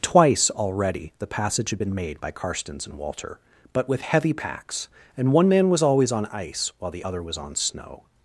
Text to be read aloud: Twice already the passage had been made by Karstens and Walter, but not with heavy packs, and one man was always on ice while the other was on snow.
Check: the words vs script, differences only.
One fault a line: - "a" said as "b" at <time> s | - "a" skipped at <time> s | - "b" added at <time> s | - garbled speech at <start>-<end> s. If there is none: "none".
- "not" skipped at 3.9 s